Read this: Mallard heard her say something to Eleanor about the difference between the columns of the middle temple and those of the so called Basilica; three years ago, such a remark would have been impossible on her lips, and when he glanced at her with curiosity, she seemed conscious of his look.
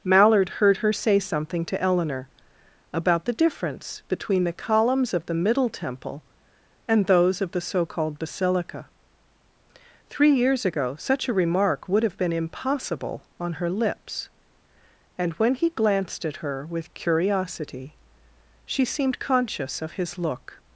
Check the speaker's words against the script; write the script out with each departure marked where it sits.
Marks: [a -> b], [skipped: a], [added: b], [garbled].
Mallard heard her say something to Eleanor about the difference between the columns of the middle temple and those of the so called Basilica; three years ago, such a remark would have been impossible on her lips, and when he glanced at her with curiosity, she seemed conscious of his look.